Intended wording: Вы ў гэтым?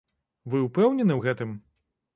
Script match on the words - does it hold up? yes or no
no